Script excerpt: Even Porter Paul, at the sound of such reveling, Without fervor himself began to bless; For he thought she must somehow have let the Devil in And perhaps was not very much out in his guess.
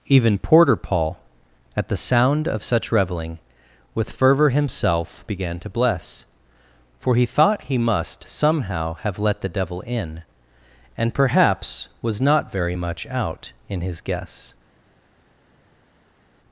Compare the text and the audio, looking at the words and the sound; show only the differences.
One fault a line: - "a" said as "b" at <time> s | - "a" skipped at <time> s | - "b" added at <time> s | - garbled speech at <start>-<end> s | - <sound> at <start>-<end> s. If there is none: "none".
- "Without" said as "With" at 3.9 s
- "she" said as "he" at 7.7 s